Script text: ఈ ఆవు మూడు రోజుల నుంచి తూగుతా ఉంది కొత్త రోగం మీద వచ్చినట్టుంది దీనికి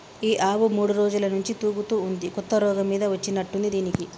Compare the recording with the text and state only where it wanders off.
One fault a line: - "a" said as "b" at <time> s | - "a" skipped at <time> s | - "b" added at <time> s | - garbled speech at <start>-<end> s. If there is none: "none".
none